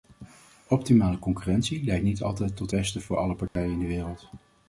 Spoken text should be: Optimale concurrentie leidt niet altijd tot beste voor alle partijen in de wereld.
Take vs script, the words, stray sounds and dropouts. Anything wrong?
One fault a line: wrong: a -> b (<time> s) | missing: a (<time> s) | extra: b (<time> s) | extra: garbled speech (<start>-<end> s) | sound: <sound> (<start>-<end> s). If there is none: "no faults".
sound: dropout (3.5-3.6 s)